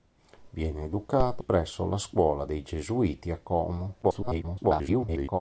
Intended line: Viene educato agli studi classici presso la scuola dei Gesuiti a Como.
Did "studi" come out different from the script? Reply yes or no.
yes